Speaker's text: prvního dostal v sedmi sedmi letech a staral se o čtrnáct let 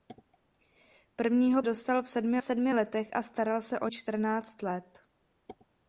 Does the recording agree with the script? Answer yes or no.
yes